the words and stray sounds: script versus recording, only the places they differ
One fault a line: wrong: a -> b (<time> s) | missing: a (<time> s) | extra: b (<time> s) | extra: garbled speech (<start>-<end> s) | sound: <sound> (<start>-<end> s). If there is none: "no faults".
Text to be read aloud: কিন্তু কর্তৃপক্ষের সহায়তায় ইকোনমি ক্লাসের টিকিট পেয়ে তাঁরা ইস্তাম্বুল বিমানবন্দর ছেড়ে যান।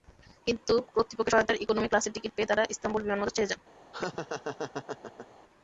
sound: laugh (3.9-5.3 s)